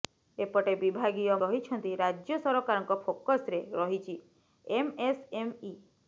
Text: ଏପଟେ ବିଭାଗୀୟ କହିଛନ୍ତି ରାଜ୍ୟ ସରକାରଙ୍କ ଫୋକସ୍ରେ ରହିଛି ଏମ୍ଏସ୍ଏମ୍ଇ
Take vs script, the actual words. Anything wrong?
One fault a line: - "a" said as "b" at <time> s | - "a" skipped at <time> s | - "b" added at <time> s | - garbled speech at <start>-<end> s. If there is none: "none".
none